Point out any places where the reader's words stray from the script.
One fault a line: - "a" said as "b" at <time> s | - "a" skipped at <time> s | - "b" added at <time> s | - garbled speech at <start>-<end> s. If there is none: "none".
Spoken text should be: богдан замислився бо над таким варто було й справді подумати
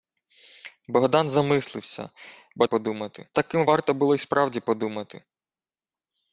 - "над" said as "подумати" at 2.6 s